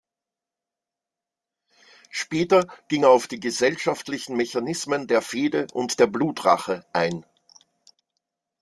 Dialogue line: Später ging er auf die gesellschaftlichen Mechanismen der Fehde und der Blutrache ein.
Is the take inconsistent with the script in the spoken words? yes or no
no